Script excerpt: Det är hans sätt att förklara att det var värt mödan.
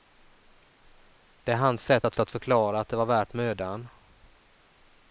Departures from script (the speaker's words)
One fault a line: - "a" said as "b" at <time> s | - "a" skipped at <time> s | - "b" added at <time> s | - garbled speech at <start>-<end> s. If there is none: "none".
- "att" added at 2.2 s